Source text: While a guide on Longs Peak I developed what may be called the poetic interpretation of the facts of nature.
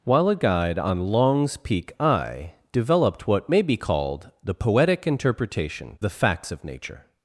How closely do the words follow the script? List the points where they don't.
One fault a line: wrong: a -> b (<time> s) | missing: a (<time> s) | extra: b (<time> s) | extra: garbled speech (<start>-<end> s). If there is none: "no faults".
missing: of (6.0 s)